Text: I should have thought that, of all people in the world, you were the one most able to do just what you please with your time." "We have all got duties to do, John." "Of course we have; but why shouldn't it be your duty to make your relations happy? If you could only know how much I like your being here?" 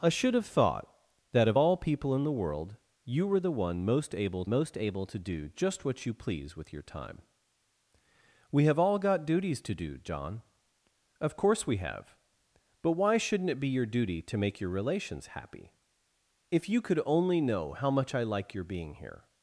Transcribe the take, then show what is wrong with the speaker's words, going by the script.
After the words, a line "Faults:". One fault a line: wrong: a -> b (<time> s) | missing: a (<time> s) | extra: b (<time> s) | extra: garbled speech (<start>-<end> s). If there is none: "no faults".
I should have thought that, of all people in the world, you were the one most able most able to do just what you please with your time." "We have all got duties to do, John." "Of course we have; but why shouldn't it be your duty to make your relations happy? If you could only know how much I like your being here?"
Faults:
extra: most able (4.5 s)